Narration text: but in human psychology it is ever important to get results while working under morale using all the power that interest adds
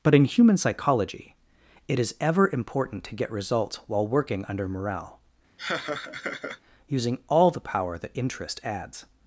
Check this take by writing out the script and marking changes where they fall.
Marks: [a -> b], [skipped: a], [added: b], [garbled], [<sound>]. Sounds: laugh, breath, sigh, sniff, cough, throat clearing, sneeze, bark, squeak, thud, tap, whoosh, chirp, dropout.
but in human psychology it is ever important to get results while working under morale [laugh] using all the power that interest adds